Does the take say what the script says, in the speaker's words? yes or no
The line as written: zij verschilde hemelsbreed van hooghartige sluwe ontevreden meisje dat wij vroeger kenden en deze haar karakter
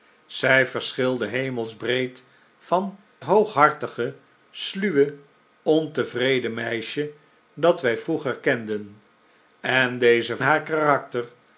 yes